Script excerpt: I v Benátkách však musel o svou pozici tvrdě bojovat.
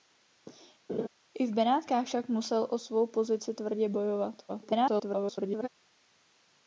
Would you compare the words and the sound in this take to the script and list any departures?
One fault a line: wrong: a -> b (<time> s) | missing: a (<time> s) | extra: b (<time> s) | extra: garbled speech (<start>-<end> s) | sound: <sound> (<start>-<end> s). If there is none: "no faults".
sound: laugh (0.9-1.1 s)
extra: garbled speech (4.5-5.7 s)